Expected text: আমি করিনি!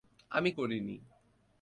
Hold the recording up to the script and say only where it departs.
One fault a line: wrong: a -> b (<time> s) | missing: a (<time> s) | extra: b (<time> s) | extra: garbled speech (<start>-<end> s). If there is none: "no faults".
no faults